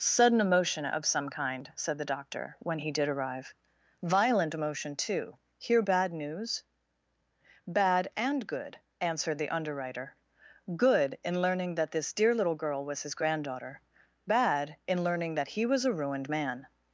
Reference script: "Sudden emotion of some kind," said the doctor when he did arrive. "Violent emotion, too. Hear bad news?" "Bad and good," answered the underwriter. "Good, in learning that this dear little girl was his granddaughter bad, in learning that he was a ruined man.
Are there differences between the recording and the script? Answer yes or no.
no